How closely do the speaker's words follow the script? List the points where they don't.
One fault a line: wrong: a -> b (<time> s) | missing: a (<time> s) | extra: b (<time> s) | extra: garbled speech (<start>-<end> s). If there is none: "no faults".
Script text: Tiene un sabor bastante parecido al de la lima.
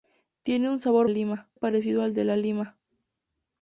wrong: bastante -> lima (1.1 s)